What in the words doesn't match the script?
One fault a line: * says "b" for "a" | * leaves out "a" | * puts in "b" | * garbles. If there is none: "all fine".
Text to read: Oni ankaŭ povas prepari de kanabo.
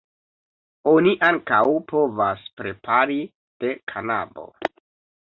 all fine